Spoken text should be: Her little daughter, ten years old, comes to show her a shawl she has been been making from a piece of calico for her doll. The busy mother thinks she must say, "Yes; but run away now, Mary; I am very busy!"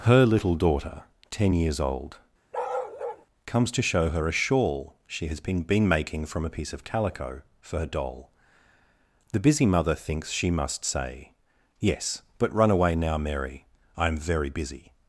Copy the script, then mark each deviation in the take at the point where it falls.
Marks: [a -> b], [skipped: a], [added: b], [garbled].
Her little daughter, ten years old, comes to show her a shawl she has been been making from a piece of calico for her doll. The busy mother thinks she must say, "Yes; but run away now, Mary; I am very busy!"